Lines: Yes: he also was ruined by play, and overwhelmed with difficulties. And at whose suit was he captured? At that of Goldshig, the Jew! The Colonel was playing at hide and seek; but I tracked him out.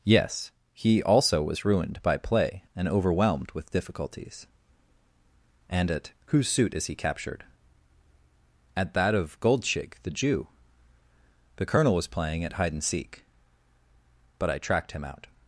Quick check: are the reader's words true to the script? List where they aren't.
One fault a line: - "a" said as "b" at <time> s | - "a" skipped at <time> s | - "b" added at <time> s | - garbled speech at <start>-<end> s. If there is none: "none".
- "was" said as "is" at 6.7 s